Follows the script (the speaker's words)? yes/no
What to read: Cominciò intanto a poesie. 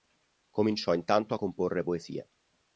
no